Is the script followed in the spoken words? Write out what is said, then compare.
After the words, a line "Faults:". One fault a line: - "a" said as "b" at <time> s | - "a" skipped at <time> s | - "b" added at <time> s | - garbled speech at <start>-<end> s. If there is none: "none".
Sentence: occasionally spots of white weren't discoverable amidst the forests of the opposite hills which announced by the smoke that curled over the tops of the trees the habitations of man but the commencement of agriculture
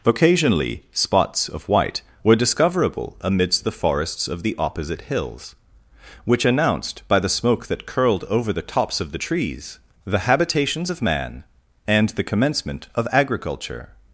occasionally spots of white were discoverable amidst the forests of the opposite hills which announced by the smoke that curled over the tops of the trees the habitations of man and the commencement of agriculture
Faults:
- "weren't" said as "were" at 2.2 s
- "but" said as "and" at 11.9 s